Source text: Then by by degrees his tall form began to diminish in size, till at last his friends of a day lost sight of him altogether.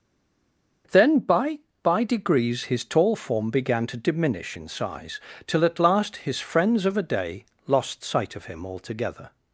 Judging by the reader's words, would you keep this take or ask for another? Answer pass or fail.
pass